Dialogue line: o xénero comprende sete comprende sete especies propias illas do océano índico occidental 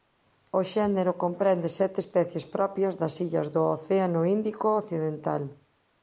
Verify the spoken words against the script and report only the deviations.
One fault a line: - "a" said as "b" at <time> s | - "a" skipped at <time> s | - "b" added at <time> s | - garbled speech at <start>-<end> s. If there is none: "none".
- "comprende sete" skipped at 2.0 s
- "das" added at 3.0 s